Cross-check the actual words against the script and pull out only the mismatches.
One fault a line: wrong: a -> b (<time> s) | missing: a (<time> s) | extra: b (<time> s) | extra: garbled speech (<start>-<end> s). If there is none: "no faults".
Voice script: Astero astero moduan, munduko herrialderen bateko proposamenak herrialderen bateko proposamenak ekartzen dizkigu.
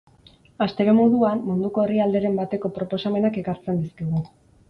missing: astero (0.9 s)
missing: herrialderen bateko proposamenak (3.4 s)